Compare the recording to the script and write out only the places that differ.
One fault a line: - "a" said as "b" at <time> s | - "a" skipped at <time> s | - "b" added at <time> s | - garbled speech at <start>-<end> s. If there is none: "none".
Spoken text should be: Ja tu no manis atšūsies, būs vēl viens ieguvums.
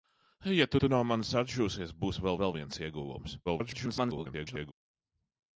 - "tu" added at 0.7 s
- "vēl" added at 2.4 s
- garbled speech at 3.4-4.7 s